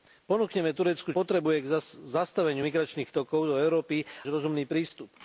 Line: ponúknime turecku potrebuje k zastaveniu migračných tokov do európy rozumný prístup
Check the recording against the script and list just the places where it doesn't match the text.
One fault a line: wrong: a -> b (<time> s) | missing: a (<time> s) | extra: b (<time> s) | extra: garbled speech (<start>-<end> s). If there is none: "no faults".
no faults